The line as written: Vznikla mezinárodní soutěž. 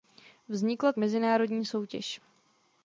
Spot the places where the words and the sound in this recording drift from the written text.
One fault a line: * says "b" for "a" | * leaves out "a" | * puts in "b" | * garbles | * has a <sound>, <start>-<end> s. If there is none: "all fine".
all fine